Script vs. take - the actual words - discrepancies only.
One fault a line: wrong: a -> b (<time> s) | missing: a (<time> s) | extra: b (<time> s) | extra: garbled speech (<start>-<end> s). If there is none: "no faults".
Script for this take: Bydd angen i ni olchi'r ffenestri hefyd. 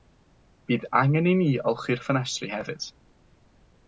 no faults